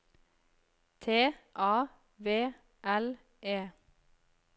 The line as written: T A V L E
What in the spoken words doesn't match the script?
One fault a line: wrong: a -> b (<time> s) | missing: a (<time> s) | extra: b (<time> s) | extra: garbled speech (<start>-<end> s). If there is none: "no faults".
no faults